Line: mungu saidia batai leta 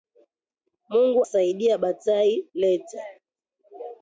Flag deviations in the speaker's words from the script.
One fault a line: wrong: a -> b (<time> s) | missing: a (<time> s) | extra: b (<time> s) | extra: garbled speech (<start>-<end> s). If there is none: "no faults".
no faults